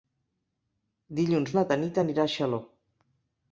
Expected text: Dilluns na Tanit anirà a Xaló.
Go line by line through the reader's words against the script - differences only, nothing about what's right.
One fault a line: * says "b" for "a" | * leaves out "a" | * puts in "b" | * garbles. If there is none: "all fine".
all fine